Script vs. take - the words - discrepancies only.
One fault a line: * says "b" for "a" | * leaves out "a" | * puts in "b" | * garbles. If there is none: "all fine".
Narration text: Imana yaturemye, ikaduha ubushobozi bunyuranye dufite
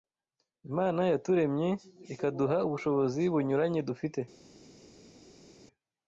all fine